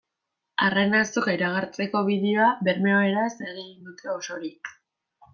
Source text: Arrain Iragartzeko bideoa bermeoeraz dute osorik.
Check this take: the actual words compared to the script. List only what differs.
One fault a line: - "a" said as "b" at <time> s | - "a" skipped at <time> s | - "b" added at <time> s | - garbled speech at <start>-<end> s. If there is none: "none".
- "Azoka" added at 1.0 s
- "egin" added at 3.5 s